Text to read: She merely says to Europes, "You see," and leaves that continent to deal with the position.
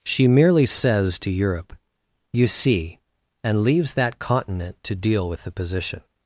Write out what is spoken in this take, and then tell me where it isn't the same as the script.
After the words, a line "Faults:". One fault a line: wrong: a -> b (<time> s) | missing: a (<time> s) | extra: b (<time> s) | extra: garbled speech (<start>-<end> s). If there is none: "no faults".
She merely says to Europe, "You see," and leaves that continent to deal with the position.
Faults:
wrong: Europes -> Europe (1.3 s)